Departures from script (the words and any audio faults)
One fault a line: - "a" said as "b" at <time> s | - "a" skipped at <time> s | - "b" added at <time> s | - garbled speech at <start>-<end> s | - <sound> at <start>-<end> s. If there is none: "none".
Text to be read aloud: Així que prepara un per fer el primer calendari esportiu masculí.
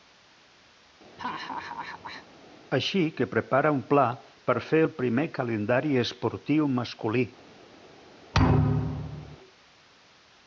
- laugh at 1.2-2.3 s
- "pla" added at 3.9 s
- thud at 8.3-9.4 s